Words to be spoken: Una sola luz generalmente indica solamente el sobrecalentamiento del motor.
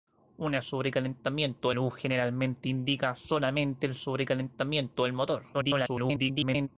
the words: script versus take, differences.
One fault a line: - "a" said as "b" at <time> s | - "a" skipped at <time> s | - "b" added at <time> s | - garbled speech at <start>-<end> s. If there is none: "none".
- "sola" said as "sobrecalentamiento" at 0.6 s
- garbled speech at 5.5-6.7 s